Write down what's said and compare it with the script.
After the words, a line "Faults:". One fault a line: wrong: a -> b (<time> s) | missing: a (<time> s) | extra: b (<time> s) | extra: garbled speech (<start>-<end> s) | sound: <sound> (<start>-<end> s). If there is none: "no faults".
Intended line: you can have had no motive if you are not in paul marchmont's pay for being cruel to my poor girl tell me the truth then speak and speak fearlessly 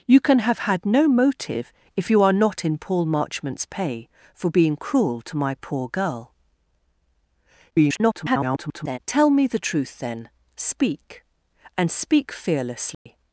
you can have had no motive if you are not in paul marchmont's pay for being cruel to my poor girl [garbled] tell me the truth then speak and speak fearlessly
Faults:
extra: garbled speech (7.7-9.0 s)
sound: dropout (12.9-13.1 s)